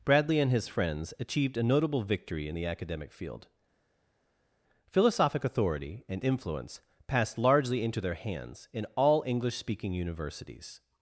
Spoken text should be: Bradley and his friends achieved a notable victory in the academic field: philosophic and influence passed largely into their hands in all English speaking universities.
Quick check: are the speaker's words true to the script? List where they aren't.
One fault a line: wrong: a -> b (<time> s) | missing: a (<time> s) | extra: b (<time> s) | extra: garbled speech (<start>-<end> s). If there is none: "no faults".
extra: authority (5.4 s)